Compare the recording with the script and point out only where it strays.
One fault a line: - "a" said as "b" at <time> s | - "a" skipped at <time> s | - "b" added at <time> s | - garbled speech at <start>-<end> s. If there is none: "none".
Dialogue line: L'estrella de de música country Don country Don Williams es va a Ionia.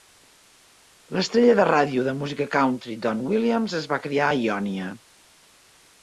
- "ràdio" added at 1.7 s
- "country Don" skipped at 3.2 s
- "criar" added at 4.1 s